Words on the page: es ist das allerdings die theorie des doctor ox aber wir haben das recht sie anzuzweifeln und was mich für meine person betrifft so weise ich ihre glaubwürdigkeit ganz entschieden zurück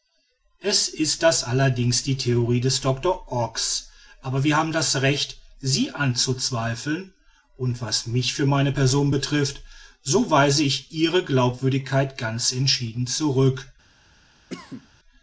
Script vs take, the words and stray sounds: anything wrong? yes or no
yes